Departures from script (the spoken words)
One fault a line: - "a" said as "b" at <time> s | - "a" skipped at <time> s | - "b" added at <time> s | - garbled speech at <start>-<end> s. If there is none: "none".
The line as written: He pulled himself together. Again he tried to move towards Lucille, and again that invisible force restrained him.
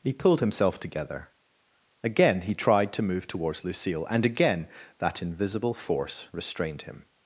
none